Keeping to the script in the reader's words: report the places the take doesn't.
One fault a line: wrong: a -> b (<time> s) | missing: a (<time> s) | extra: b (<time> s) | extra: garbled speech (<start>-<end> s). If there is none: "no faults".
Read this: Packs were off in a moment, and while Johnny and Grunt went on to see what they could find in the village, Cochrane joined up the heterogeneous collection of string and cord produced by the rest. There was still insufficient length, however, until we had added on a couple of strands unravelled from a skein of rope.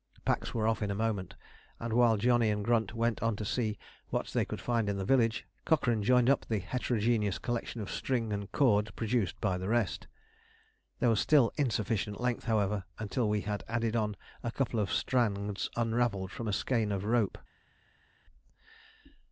no faults